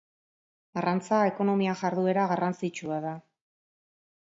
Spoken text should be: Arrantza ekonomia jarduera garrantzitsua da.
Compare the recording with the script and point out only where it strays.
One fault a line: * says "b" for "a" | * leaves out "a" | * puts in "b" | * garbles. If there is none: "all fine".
all fine